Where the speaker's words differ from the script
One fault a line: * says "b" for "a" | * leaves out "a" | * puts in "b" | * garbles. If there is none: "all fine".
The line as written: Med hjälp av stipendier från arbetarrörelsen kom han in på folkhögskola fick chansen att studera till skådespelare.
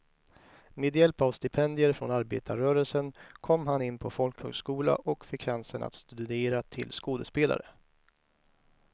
* puts in "och"